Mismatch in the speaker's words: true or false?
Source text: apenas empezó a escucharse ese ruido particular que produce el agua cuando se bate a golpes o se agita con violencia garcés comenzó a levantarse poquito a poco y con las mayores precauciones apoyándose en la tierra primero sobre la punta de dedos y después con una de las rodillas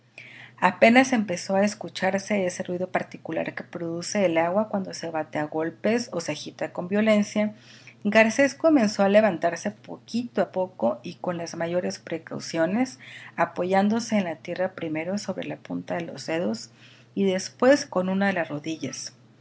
true